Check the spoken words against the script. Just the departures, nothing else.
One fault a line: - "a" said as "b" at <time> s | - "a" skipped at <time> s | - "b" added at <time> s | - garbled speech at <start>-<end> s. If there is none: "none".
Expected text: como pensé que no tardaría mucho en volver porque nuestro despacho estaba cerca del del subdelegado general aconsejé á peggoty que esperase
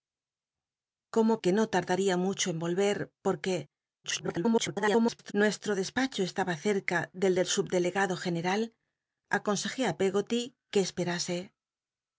- "pensé" skipped at 1.3 s
- garbled speech at 4.0-5.3 s